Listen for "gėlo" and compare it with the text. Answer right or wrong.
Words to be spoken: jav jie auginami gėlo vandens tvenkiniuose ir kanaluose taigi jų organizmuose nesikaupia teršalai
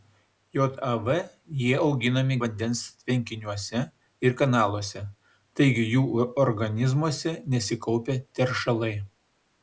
wrong